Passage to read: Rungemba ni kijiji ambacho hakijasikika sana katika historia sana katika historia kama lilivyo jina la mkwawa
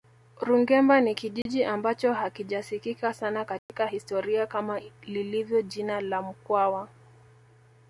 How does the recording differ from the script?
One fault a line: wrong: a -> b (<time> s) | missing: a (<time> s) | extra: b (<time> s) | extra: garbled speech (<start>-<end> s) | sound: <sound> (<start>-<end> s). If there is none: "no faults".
sound: dropout (1.4-1.5 s)
sound: dropout (3.6-3.7 s)
missing: sana katika historia (4.5 s)